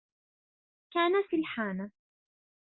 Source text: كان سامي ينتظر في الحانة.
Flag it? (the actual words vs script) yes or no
yes